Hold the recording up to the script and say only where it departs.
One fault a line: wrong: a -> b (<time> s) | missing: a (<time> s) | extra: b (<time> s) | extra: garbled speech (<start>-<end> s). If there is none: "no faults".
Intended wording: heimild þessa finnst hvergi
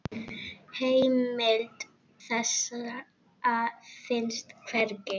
no faults